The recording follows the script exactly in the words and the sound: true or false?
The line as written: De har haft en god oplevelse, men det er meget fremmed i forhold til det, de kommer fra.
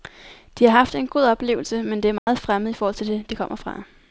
false